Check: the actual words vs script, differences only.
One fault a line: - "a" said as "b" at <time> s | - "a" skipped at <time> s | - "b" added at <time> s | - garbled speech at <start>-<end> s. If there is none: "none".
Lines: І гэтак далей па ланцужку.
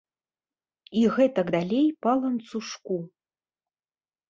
none